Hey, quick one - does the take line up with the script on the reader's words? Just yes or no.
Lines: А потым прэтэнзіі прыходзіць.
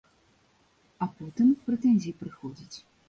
yes